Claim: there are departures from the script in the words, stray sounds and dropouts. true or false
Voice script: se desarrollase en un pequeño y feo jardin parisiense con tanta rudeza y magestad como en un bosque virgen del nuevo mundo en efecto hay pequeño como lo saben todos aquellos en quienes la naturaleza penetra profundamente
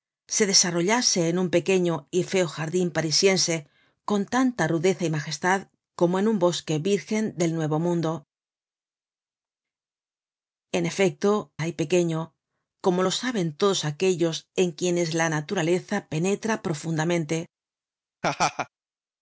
true